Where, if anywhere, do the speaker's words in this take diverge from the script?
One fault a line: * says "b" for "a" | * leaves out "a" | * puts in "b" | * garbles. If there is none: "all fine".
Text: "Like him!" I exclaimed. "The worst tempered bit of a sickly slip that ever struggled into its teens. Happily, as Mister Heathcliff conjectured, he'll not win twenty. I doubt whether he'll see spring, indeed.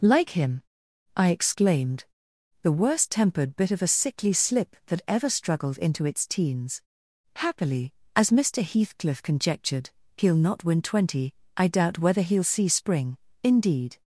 all fine